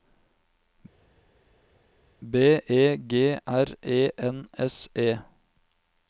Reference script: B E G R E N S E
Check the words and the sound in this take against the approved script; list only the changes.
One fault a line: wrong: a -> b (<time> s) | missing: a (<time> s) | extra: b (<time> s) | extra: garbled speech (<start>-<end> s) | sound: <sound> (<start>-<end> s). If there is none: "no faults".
no faults